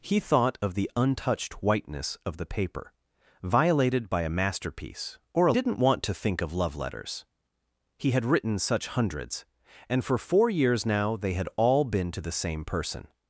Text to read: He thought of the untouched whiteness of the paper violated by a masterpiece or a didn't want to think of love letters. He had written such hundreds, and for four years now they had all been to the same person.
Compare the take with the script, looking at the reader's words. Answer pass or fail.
pass